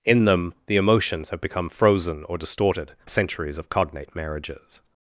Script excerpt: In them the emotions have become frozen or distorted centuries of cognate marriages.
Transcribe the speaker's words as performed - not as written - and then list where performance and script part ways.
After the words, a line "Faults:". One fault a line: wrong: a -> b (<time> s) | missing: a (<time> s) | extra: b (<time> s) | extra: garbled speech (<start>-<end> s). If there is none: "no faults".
In them the emotions have become frozen or distorted centuries of cognate marriages.
Faults:
no faults